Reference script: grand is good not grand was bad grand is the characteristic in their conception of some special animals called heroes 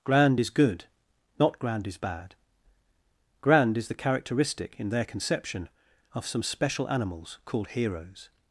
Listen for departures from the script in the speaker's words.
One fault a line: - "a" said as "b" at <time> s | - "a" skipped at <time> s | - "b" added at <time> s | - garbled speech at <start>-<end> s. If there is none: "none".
- "was" said as "is" at 1.9 s